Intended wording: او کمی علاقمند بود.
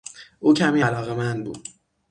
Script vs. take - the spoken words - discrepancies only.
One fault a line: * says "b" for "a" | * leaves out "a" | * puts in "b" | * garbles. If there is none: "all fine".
all fine